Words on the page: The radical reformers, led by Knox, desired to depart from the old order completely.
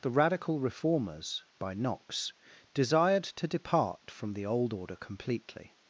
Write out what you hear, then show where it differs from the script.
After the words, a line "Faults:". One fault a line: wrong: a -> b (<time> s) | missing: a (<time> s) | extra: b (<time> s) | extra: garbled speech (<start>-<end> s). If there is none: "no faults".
The radical reformers, by Knox, desired to depart from the old order completely.
Faults:
missing: led (1.4 s)